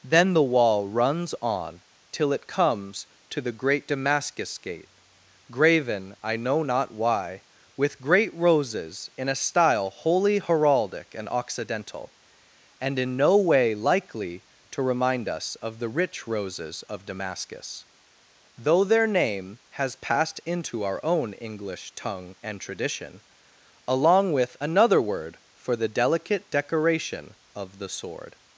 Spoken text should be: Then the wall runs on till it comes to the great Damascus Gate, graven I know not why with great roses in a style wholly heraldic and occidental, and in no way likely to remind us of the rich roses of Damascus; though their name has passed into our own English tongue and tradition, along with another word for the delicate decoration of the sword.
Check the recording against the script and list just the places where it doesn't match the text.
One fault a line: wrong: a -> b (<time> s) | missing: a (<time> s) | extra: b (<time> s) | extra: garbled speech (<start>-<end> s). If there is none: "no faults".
no faults